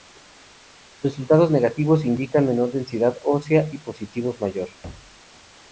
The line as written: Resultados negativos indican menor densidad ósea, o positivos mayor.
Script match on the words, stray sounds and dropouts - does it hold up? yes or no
no